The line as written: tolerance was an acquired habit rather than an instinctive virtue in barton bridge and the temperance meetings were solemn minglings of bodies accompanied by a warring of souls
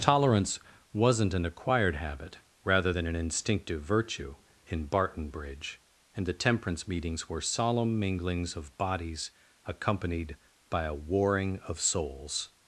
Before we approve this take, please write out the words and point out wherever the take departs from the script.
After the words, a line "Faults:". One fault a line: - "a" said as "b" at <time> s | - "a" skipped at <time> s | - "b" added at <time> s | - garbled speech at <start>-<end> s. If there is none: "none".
tolerance wasn't an acquired habit rather than an instinctive virtue in barton bridge and the temperance meetings were solemn minglings of bodies accompanied by a warring of souls
Faults:
- "was" said as "wasn't" at 0.9 s